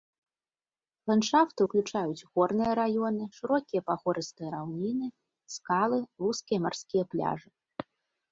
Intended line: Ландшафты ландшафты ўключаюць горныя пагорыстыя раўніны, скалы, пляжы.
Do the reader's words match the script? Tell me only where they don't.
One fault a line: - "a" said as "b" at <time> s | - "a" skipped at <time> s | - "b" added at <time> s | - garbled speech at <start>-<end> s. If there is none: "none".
- "ландшафты" skipped at 1.6 s
- "раёны шырокія" added at 2.8 s
- "вузкія марскія" added at 6.3 s